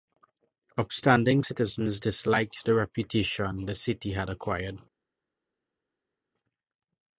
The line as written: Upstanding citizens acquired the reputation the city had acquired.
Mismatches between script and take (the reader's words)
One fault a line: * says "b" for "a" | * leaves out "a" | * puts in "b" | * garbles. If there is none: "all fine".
* says "disliked" for "acquired"